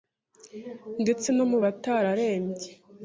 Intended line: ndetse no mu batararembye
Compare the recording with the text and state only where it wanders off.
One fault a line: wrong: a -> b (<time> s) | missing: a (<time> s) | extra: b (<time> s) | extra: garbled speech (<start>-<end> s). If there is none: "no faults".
no faults